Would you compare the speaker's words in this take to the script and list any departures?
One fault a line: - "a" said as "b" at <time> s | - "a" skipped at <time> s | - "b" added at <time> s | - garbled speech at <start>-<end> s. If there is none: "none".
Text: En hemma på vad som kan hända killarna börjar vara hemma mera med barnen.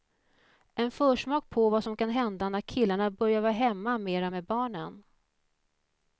- "hemma" said as "försmak" at 0.9 s
- "när" added at 2.5 s